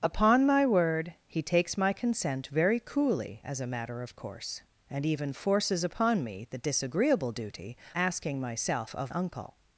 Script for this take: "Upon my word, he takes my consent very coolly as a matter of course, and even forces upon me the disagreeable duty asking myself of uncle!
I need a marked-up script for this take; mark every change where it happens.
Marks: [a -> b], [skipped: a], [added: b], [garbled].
"Upon my word, he takes my consent very coolly as a matter of course, and even forces upon me the disagreeable duty asking myself of uncle!